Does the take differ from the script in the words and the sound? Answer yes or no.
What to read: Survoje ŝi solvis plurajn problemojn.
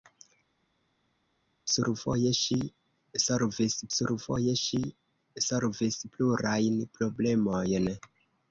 yes